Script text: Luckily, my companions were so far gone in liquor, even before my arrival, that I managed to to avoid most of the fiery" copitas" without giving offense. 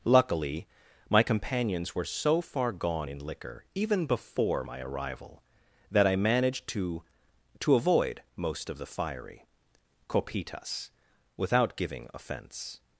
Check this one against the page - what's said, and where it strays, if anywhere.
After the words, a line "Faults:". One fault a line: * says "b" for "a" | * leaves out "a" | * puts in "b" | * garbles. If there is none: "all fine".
Luckily, my companions were so far gone in liquor, even before my arrival, that I managed to to avoid most of the fiery" copitas" without giving offense.
Faults:
all fine